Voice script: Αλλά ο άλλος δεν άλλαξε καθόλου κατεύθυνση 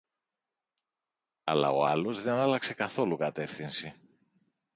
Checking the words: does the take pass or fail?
pass